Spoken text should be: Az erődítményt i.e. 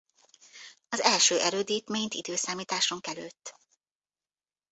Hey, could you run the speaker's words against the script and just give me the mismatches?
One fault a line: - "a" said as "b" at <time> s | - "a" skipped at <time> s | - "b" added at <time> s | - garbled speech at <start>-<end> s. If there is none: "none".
- "első" added at 1.0 s